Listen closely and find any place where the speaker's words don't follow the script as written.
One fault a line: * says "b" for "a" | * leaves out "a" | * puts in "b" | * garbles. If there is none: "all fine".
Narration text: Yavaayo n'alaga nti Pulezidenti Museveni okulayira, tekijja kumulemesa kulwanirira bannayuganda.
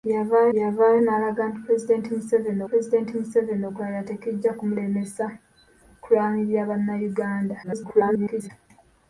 * puts in "yavaayo"
* puts in "Pulezidenti Museveni"
* garbles